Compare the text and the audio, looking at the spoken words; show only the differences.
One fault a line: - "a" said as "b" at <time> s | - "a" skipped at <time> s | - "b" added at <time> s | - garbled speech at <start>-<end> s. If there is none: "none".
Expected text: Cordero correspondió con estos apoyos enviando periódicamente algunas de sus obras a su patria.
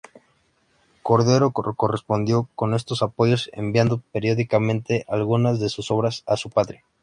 none